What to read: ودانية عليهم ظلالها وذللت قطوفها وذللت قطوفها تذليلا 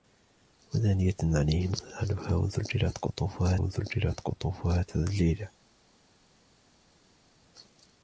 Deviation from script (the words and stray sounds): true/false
false